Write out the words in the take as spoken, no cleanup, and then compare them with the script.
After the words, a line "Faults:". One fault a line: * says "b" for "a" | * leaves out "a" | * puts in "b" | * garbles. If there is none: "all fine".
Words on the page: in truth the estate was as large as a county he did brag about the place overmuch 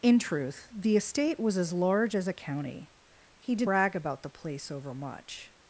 in truth the estate was as large as a county he did brag about the place overmuch
Faults:
all fine